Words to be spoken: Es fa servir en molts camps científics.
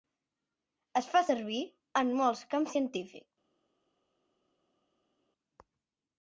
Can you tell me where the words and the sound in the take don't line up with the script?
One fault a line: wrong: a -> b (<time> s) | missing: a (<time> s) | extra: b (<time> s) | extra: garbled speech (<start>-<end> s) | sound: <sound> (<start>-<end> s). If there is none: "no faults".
no faults